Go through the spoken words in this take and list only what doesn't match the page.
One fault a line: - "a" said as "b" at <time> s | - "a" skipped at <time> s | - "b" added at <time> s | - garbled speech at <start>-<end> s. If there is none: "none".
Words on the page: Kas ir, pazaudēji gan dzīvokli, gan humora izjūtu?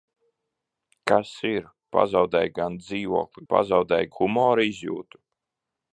- "gan" said as "pazaudēji" at 3.5 s